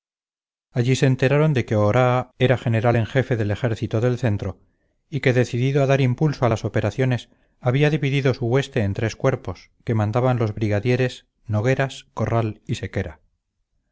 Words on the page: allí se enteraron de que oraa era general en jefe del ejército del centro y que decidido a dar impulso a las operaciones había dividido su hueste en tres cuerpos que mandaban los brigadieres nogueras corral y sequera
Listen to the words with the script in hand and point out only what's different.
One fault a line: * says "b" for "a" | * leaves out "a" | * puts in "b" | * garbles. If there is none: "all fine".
all fine